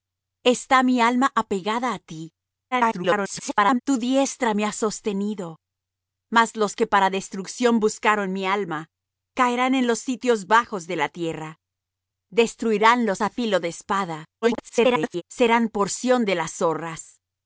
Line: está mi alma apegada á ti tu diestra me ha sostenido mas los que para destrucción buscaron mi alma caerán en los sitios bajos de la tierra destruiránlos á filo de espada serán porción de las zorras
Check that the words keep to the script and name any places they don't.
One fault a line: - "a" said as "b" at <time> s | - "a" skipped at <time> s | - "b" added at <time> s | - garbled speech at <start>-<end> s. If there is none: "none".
- garbled speech at 2.7-3.8 s
- garbled speech at 14.4-15.2 s